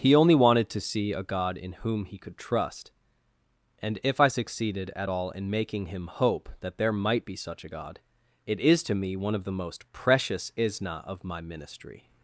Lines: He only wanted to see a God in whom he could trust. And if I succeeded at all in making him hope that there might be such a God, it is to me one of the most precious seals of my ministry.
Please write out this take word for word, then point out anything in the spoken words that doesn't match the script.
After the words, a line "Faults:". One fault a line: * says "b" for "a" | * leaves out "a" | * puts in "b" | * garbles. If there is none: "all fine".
He only wanted to see a God in whom he could trust. And if I succeeded at all in making him hope that there might be such a God, it is to me one of the most precious isna of my ministry.
Faults:
* says "isna" for "seals"